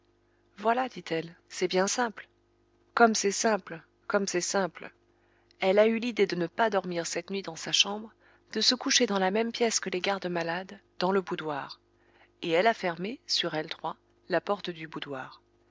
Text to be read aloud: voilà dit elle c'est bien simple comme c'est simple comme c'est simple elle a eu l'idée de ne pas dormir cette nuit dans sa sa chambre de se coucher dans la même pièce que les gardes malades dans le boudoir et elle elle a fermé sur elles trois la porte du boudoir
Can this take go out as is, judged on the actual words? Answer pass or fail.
fail